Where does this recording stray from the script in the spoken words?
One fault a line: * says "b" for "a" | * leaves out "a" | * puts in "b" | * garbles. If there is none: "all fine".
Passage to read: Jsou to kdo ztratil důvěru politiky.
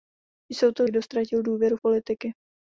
all fine